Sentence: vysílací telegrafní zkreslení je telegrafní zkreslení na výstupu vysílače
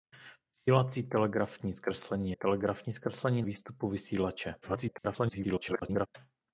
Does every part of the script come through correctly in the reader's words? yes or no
no